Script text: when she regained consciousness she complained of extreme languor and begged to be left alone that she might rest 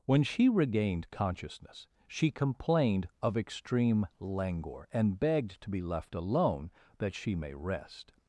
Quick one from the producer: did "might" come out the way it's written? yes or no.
no